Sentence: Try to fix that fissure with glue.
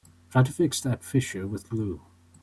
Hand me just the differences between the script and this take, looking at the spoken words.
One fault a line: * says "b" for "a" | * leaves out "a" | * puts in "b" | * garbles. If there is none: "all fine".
all fine